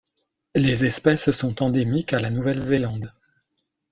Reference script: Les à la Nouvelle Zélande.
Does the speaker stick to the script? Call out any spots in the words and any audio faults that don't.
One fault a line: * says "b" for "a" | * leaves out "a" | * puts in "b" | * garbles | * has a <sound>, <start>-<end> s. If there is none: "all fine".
* puts in "espèces sont endémiques"